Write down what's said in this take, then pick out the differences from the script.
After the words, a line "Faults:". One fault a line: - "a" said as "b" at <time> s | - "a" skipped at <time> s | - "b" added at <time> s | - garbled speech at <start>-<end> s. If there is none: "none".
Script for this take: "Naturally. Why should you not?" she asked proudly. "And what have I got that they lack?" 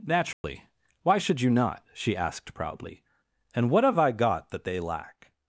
"Naturally. Why should you not?" she asked proudly. "And what have I got that they lack?"
Faults:
none